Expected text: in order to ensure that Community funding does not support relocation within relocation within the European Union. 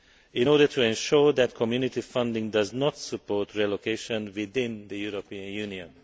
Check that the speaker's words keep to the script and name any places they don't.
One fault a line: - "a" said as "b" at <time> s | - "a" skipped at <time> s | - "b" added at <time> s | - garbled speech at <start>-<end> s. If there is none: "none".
- "relocation within" skipped at 4.9 s